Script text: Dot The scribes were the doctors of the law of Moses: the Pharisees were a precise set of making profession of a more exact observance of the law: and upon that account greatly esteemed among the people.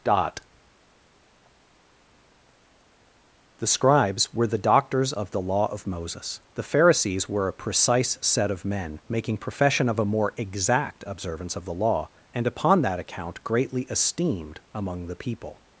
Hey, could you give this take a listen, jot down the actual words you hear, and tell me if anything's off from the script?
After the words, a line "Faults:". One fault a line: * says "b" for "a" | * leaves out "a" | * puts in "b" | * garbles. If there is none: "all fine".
Dot The scribes were the doctors of the law of Moses: the Pharisees were a precise set of men, making profession of a more exact observance of the law: and upon that account greatly esteemed among the people.
Faults:
* puts in "men"